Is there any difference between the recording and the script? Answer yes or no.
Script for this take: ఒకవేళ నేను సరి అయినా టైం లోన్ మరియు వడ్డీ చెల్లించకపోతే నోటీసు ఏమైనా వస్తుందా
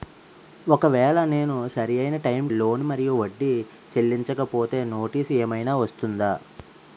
no